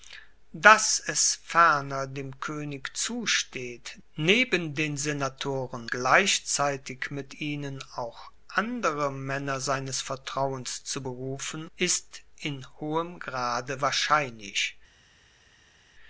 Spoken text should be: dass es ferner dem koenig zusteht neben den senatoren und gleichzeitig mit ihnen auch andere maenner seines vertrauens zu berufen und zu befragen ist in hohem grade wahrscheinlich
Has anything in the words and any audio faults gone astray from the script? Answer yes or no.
yes